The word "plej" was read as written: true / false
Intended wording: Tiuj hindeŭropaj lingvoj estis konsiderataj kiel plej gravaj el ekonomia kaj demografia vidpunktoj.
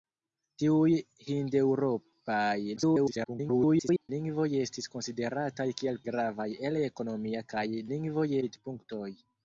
false